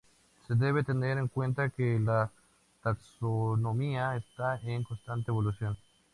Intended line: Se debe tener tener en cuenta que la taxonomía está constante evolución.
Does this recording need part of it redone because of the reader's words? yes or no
yes